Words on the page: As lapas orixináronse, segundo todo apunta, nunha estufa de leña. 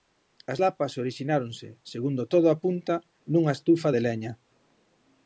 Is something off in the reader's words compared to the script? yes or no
no